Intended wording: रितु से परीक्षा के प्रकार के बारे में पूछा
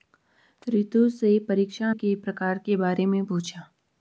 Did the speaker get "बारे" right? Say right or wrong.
right